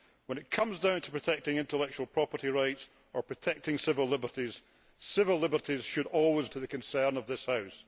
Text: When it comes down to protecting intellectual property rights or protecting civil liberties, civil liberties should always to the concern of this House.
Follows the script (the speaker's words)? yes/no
yes